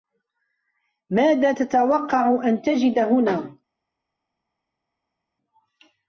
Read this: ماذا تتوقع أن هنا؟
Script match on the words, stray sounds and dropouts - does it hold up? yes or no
no